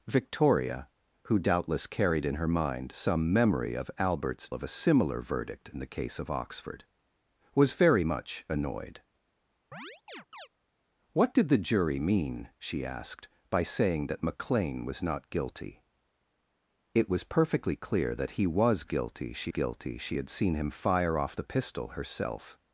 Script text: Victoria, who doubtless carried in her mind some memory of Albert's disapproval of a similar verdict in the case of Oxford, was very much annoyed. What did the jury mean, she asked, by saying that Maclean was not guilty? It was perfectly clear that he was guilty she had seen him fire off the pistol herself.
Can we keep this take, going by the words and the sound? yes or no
no